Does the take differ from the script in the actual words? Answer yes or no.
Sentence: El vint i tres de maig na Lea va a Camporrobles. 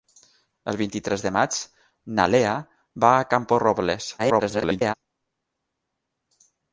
yes